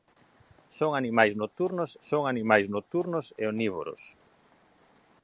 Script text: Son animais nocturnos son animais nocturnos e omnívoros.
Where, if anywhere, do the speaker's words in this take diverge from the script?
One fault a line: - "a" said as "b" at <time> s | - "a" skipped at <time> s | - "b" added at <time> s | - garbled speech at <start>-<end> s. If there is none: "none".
none